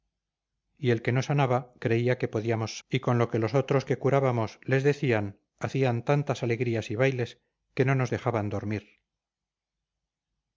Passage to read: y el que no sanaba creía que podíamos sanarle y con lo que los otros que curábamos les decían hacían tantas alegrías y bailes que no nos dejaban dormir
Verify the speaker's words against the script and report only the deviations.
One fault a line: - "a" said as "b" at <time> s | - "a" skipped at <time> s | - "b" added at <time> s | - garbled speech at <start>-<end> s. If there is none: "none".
- "sanarle" skipped at 2.8 s